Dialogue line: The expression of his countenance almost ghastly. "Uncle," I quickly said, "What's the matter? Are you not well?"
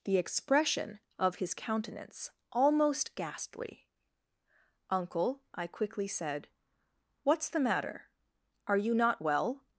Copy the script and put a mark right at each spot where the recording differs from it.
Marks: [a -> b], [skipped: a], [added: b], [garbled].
The expression of his countenance almost ghastly. "Uncle," I quickly said, "What's the matter? Are you not well?"